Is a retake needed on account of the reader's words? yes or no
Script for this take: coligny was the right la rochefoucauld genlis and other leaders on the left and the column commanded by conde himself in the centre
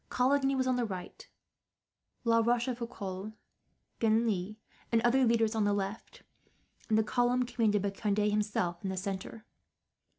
yes